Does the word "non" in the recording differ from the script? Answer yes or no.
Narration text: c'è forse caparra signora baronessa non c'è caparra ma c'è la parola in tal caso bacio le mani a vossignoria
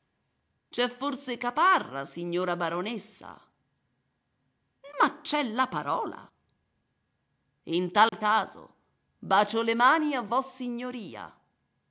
yes